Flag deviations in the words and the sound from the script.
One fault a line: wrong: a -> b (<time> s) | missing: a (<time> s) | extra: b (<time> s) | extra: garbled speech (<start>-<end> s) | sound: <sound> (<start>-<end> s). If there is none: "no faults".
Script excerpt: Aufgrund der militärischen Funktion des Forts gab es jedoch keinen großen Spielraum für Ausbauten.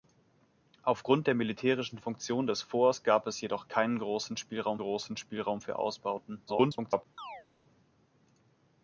extra: großen Spielraum (4.8 s)
extra: garbled speech (6.5-7.1 s)
sound: chirp (7.2-7.5 s)